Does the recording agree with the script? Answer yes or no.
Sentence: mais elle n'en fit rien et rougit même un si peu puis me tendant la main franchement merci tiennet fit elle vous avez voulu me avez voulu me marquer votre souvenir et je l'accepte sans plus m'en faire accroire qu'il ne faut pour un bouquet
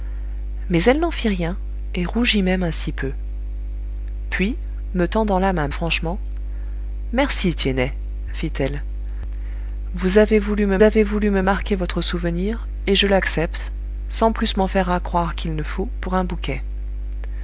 yes